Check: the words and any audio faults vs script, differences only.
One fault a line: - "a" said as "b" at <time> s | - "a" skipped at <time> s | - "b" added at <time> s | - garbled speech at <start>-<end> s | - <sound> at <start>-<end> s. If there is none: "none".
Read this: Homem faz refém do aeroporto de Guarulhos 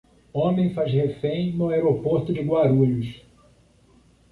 - "do" said as "no" at 1.5 s